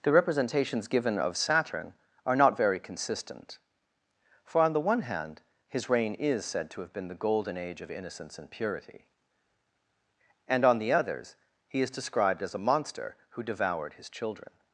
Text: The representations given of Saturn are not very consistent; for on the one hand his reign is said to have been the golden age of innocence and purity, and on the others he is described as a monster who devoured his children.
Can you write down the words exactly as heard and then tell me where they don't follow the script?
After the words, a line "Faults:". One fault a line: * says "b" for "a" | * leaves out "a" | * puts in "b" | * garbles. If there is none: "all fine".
The representations given of Saturn are not very consistent; for on the one hand his reign is said to have been the golden age of innocence and purity, and on the others he is described as a monster who devoured his children.
Faults:
all fine